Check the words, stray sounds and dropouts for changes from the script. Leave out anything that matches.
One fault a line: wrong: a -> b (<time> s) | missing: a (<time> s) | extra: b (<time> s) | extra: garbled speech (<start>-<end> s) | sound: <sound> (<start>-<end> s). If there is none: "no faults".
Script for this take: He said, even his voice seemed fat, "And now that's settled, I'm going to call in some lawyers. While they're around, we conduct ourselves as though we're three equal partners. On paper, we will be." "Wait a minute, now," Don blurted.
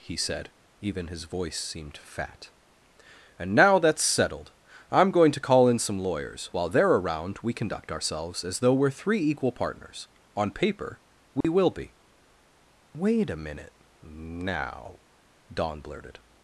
sound: dropout (11.4-11.4 s)